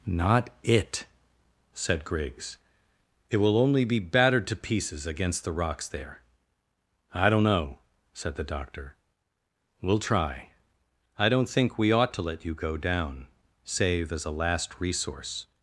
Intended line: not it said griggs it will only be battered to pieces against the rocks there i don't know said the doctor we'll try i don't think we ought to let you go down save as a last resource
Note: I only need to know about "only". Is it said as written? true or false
true